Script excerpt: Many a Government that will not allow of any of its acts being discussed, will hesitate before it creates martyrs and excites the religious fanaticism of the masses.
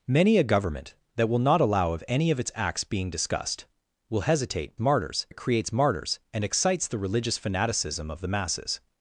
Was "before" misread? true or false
true